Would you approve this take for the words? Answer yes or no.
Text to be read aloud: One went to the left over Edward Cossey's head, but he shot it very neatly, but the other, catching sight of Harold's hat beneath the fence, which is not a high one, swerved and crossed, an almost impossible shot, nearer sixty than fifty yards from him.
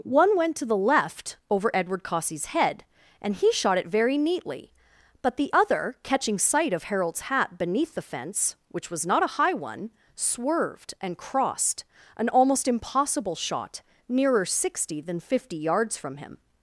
no